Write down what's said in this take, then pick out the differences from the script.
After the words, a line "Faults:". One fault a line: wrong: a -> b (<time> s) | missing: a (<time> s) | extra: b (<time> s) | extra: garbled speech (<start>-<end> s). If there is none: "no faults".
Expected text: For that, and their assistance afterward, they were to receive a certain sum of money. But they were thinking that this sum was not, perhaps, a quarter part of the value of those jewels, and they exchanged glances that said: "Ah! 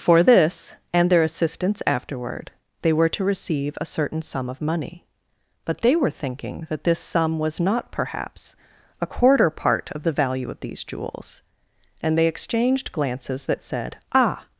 For this, and their assistance afterward, they were to receive a certain sum of money. But they were thinking that this sum was not, perhaps, a quarter part of the value of these jewels, and they exchanged glances that said: "Ah!
Faults:
wrong: that -> this (0.2 s)
wrong: those -> these (10.6 s)